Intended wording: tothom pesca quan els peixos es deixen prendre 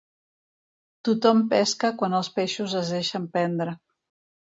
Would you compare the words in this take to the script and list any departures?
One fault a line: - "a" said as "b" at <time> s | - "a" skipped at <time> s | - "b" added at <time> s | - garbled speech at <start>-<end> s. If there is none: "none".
none